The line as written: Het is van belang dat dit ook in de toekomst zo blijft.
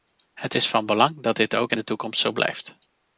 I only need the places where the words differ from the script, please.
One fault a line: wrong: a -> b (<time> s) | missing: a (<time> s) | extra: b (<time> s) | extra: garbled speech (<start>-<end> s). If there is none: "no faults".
no faults